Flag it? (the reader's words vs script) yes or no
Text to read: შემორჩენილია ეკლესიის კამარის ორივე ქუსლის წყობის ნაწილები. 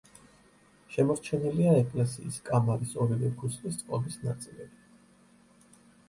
no